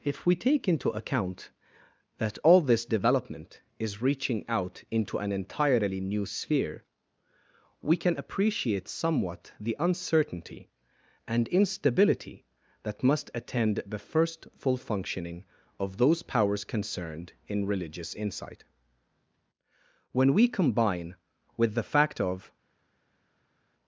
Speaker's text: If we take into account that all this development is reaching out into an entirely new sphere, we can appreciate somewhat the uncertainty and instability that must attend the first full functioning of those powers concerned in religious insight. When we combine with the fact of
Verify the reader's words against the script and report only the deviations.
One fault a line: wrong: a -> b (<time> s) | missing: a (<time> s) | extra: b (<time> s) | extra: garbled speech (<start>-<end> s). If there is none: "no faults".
no faults